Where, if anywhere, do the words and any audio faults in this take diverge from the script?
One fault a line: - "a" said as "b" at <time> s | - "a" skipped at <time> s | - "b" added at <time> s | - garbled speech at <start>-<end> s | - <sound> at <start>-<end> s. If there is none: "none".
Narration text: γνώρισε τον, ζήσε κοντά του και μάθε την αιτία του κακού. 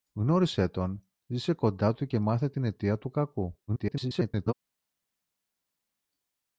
- garbled speech at 3.7-4.5 s